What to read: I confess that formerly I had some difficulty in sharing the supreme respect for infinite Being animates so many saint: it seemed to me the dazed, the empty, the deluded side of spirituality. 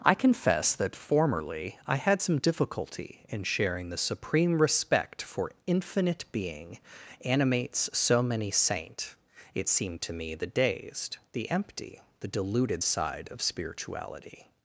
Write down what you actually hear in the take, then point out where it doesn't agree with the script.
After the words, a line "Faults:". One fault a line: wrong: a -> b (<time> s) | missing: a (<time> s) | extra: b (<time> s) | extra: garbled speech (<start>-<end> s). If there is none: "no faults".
I confess that formerly I had some difficulty in sharing the supreme respect for infinite Being animates so many saint: it seemed to me the dazed, the empty, the deluded side of spirituality.
Faults:
no faults